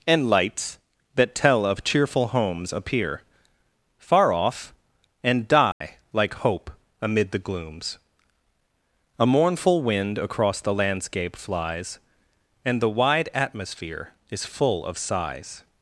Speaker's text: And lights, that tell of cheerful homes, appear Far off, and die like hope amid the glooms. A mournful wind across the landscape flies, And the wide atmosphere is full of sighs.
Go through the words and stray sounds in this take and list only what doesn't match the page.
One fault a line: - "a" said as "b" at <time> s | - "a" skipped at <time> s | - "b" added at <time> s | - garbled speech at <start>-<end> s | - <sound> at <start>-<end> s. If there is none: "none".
- dropout at 5.7-5.8 s